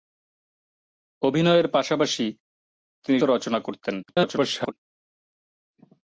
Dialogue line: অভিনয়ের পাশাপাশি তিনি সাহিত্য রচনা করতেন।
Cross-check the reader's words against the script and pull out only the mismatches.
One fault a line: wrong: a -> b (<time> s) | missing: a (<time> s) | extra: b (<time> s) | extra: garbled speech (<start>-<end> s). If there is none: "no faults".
missing: সাহিত্য (3.2 s)
extra: garbled speech (4.0-4.7 s)